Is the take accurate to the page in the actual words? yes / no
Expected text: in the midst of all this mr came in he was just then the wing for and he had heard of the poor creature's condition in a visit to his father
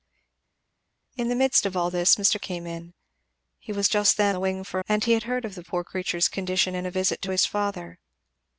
yes